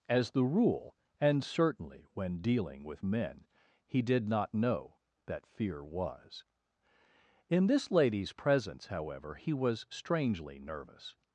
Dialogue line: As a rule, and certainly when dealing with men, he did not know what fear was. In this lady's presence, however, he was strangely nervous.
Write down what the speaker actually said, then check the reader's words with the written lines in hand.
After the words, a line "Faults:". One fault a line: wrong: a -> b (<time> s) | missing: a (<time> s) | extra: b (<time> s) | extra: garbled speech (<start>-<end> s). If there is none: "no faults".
As the rule, and certainly when dealing with men, he did not know that fear was. In this lady's presence, however, he was strangely nervous.
Faults:
wrong: a -> the (0.3 s)
wrong: what -> that (5.3 s)